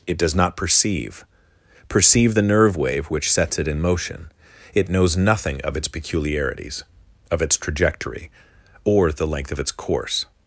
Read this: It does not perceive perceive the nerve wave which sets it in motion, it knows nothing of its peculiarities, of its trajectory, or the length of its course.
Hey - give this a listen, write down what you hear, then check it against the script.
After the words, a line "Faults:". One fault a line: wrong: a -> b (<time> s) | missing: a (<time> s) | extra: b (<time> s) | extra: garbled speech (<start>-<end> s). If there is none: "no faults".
It does not perceive perceive the nerve wave which sets it in motion, it knows nothing of its peculiarities, of its trajectory, or the length of its course.
Faults:
no faults